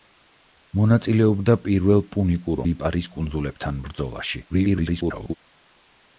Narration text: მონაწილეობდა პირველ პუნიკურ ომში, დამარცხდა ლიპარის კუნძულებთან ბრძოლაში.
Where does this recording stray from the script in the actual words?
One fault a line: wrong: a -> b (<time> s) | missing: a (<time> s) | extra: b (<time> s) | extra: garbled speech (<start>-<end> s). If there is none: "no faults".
missing: ომში დამარცხდა (2.6 s)
extra: garbled speech (4.5-5.3 s)